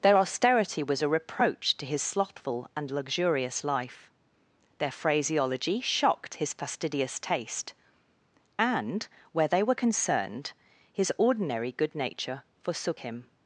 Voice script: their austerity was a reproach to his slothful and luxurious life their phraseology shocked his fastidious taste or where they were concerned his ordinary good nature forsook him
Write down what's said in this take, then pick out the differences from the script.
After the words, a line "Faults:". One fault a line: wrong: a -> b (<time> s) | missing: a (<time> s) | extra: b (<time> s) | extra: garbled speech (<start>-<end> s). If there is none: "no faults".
their austerity was a reproach to his slothful and luxurious life their phraseology shocked his fastidious taste and where they were concerned his ordinary good nature forsook him
Faults:
wrong: or -> and (8.6 s)